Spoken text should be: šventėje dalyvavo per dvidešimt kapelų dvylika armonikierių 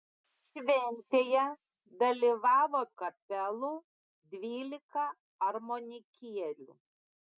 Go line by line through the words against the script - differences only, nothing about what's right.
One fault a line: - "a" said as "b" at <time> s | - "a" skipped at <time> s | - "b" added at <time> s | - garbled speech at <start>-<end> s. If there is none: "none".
- "per dvidešimt" skipped at 2.8 s